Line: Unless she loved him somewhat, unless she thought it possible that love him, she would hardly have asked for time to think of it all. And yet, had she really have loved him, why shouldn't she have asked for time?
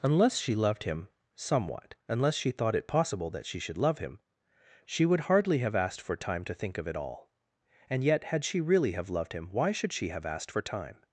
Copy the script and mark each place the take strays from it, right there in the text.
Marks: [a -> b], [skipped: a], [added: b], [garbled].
Unless she loved him somewhat, unless she thought it possible that [added: she should] love him, she would hardly have asked for time to think of it all. And yet, had she really have loved him, why [shouldn't -> should] she have asked for time?